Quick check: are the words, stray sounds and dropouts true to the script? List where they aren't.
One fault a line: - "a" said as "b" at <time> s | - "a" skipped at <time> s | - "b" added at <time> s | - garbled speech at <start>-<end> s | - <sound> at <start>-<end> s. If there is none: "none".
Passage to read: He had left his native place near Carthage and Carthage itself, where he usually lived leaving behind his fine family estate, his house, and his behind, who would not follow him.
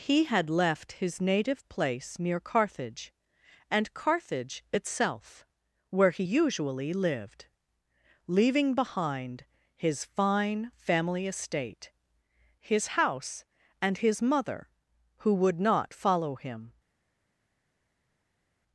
- "behind" said as "mother" at 14.2 s